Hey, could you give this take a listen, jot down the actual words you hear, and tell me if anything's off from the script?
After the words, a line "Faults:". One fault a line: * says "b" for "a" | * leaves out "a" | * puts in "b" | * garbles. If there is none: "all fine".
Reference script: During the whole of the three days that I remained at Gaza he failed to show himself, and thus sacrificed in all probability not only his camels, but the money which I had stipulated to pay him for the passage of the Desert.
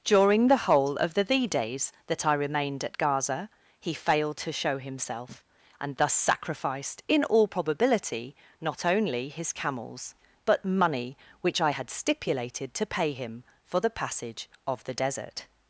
During the whole of the thee days that I remained at Gaza he failed to show himself, and thus sacrificed in all probability not only his camels, but money which I had stipulated to pay him for the passage of the Desert.
Faults:
* says "thee" for "three"
* leaves out "the"